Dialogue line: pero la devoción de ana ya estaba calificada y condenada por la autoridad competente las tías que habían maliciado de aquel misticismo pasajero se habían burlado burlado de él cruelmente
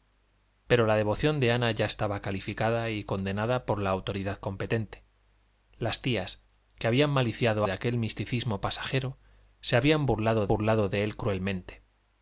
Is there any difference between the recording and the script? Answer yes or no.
no